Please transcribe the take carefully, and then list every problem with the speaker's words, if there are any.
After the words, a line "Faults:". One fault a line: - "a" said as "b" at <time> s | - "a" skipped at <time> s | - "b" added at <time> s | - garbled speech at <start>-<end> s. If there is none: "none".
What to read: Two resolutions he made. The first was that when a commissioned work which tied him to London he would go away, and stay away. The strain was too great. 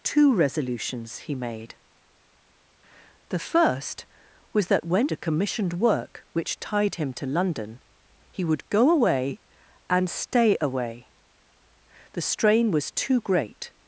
Two resolutions he made. The first was that when a commissioned work which tied him to London he would go away, and stay away. The strain was too great.
Faults:
none